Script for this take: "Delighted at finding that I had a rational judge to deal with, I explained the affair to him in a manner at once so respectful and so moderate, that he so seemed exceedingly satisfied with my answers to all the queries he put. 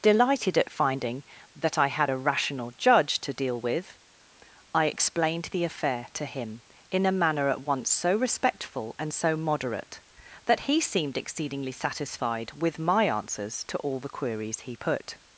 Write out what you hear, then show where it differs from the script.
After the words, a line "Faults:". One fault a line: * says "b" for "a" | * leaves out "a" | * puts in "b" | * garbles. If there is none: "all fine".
"Delighted at finding that I had a rational judge to deal with, I explained the affair to him in a manner at once so respectful and so moderate, that he seemed exceedingly satisfied with my answers to all the queries he put.
Faults:
* leaves out "so"